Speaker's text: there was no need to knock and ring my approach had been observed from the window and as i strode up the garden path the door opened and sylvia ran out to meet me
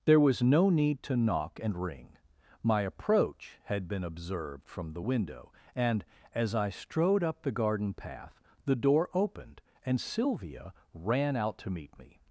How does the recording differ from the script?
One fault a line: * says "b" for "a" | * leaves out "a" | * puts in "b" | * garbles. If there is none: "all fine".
all fine